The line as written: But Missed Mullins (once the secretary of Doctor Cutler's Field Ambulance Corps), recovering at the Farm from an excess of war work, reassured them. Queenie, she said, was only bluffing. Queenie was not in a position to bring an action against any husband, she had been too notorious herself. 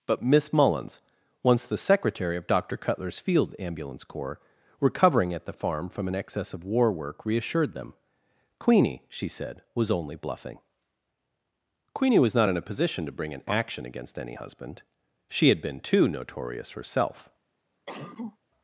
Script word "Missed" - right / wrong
wrong